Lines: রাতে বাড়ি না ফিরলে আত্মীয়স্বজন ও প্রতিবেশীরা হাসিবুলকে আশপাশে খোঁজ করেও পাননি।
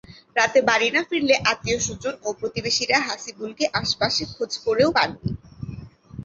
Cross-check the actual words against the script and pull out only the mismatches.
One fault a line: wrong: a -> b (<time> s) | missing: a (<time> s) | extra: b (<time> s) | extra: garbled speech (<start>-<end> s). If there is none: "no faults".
no faults